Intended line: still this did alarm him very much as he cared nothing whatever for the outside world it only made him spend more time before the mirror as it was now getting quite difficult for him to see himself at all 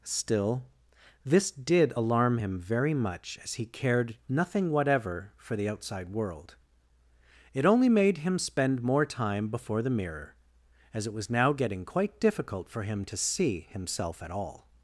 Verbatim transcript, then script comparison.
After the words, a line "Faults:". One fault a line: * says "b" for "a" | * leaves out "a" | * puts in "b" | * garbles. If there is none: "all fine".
still this did alarm him very much as he cared nothing whatever for the outside world it only made him spend more time before the mirror as it was now getting quite difficult for him to see himself at all
Faults:
all fine